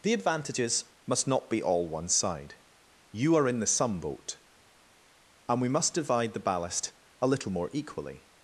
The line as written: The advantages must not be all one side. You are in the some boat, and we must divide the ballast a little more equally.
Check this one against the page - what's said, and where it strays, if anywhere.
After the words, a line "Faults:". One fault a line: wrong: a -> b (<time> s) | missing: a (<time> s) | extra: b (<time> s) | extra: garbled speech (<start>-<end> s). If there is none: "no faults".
The advantages must not be all one side. You are in the some boat, and we must divide the ballast a little more equally.
Faults:
no faults